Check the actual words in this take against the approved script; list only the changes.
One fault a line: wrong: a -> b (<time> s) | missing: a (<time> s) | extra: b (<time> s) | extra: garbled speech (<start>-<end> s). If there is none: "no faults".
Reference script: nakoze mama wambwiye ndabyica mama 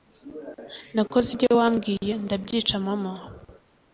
wrong: mama -> ibyo (1.3 s)